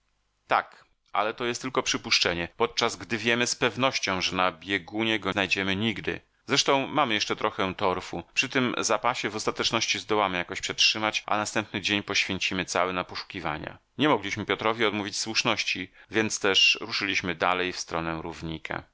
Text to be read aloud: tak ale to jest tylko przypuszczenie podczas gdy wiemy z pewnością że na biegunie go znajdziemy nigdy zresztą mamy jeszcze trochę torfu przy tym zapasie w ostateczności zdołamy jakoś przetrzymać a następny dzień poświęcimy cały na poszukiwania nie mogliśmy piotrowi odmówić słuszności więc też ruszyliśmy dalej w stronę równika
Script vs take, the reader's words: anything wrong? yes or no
no